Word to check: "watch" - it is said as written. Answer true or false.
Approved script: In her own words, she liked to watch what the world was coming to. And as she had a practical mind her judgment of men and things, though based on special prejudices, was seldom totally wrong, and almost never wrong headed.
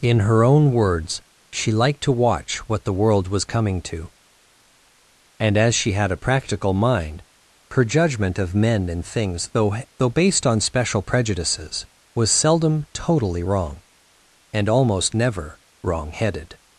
true